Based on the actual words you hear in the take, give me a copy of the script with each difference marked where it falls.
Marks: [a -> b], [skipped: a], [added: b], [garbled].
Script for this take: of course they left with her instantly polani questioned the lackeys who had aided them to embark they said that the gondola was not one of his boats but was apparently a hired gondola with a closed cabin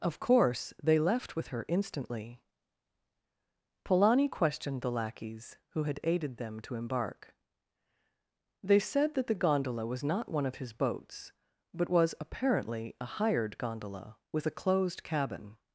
of course they left with her instantly polani questioned the lackeys who had aided them to embark they said that the gondola was not one of his boats but was apparently a hired gondola with a closed cabin